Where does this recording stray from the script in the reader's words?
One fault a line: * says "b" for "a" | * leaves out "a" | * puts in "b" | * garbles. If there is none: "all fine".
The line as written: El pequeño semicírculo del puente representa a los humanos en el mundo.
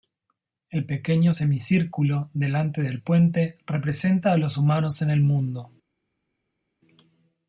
* puts in "delante"